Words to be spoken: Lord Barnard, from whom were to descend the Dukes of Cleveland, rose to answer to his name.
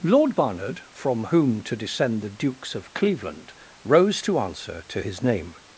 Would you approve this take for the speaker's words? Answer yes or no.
no